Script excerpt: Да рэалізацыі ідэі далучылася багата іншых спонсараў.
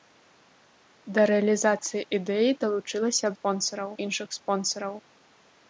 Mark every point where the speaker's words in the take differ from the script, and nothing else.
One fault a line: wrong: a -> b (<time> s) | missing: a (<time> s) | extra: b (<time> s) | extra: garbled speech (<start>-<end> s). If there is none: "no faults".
wrong: багата -> спонсараў (3.4 s)